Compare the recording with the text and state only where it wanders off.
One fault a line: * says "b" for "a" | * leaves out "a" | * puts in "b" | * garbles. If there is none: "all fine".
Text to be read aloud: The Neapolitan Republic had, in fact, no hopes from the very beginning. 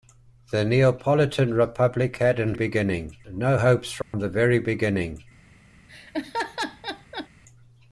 * says "beginning" for "fact"